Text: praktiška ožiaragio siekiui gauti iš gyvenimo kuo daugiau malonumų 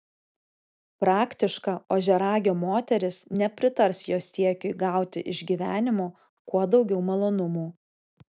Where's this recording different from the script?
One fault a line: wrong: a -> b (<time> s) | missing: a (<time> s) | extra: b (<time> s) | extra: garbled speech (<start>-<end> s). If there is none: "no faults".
extra: moteris nepritars jo (2.6 s)